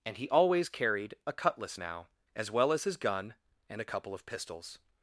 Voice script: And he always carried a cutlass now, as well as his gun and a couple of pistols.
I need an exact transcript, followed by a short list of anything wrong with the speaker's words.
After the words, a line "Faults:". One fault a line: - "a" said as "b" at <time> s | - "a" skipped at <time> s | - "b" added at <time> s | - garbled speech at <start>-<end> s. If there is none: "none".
And he always carried a cutlass now, as well as his gun and a couple of pistols.
Faults:
none